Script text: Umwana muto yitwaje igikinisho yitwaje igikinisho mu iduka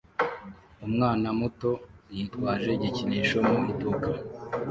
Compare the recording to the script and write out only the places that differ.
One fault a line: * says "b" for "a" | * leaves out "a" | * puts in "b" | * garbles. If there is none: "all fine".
* leaves out "yitwaje igikinisho"